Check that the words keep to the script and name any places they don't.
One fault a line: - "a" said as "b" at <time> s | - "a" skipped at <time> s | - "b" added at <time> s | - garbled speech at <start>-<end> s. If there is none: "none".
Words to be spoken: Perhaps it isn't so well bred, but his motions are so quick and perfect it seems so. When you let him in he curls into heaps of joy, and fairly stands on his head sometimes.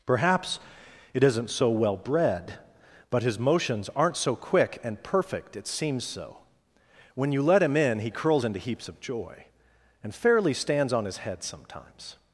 - "are" said as "aren't" at 4.0 s